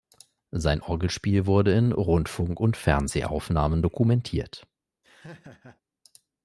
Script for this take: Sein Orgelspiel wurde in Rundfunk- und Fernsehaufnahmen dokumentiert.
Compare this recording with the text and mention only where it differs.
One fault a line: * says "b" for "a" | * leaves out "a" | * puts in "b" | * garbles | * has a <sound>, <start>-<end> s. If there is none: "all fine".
* has a laugh, 5.0-5.8 s